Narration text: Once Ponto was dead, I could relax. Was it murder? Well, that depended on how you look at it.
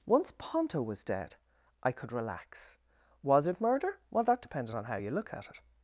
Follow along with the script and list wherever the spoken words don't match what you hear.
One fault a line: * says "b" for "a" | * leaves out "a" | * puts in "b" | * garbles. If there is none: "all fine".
all fine